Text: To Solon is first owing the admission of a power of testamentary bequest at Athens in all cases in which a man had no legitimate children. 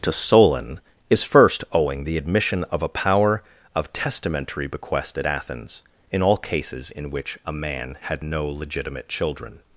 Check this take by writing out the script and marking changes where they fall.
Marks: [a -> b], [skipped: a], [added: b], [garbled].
To Solon is first owing the admission of a power of testamentary bequest at Athens in all cases in which a man had no legitimate children.